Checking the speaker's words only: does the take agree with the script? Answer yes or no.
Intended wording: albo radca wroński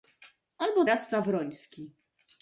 yes